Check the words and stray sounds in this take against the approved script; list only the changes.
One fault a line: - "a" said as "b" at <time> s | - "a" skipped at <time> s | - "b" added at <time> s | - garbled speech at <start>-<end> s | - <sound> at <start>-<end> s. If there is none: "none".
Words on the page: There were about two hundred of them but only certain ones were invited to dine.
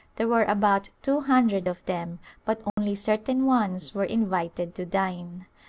- dropout at 2.7-2.8 s